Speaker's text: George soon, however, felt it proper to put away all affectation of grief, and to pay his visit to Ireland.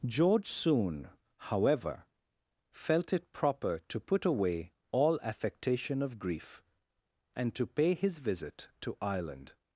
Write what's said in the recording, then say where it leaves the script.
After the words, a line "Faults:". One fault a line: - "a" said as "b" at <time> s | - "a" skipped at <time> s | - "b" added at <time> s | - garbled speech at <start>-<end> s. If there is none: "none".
George soon, however, felt it proper to put away all affectation of grief, and to pay his visit to Ireland.
Faults:
none